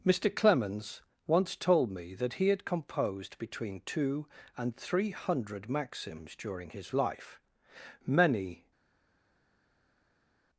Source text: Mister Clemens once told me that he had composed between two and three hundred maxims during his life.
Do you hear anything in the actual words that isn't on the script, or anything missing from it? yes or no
yes